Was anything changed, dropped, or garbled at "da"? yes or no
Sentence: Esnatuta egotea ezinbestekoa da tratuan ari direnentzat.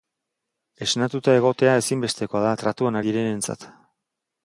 no